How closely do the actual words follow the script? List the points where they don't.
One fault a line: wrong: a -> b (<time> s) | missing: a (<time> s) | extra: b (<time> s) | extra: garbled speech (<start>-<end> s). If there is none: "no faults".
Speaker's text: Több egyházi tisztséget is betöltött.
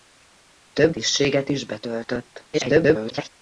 missing: egyházi (0.9 s)
extra: garbled speech (2.5-3.3 s)